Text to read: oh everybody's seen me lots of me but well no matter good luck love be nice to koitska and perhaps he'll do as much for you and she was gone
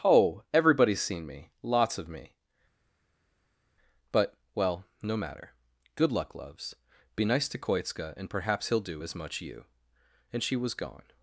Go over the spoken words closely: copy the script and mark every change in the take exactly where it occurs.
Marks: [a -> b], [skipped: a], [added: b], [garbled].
oh everybody's seen me lots of me but well no matter good luck [love -> loves] be nice to koitska and perhaps he'll do as much [skipped: for] you and she was gone